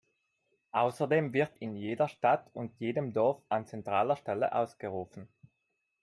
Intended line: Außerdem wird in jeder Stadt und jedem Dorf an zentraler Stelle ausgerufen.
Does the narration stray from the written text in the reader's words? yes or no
no